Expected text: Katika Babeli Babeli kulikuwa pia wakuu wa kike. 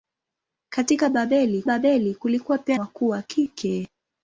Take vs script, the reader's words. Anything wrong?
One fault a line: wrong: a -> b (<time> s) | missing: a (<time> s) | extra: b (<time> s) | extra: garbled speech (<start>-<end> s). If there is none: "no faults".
no faults